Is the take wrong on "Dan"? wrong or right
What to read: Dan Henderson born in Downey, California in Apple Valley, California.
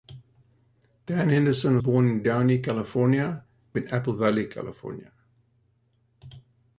right